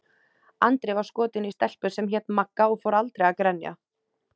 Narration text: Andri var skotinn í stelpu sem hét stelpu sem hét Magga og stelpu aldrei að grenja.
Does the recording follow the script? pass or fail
fail